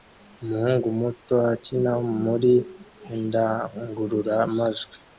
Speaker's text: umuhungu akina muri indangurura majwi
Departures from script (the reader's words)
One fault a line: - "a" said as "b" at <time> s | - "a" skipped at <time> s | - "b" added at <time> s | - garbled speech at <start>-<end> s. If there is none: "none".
- "muto" added at 1.0 s